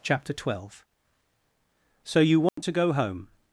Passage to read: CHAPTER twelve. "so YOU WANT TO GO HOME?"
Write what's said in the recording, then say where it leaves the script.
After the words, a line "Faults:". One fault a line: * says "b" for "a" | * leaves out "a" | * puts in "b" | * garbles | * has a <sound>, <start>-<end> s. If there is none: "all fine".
CHAPTER twelve. "so YOU WANT TO GO HOME?"
Faults:
* has a dropout, 2.5-2.6 s